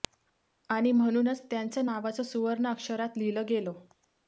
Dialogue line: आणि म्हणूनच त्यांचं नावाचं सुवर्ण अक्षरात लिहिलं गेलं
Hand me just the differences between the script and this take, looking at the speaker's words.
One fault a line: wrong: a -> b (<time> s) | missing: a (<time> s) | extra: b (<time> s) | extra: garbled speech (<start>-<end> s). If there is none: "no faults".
no faults